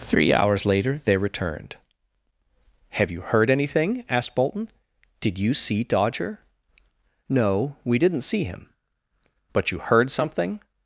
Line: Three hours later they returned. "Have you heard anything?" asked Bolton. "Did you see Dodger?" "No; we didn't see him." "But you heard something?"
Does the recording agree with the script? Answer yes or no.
yes